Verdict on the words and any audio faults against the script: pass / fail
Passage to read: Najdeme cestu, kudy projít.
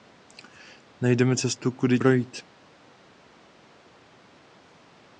pass